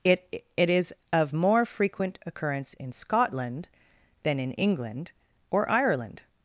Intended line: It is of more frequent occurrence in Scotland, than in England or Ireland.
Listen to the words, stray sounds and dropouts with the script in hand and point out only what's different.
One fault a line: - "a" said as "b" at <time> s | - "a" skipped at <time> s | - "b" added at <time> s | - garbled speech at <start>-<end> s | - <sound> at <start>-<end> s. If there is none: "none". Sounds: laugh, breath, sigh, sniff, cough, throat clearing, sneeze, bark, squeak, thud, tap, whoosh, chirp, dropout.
- "it" added at 0.6 s